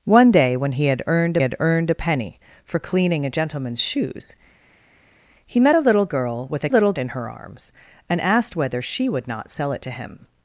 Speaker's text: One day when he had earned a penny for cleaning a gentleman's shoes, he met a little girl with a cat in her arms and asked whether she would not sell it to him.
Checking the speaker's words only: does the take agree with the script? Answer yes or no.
no